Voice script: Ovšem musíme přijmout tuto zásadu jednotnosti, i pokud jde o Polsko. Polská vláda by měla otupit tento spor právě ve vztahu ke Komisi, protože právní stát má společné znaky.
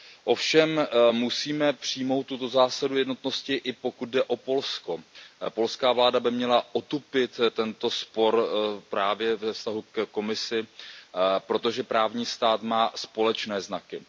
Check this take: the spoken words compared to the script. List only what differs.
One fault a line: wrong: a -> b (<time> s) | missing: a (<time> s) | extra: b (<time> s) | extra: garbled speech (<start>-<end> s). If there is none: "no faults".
no faults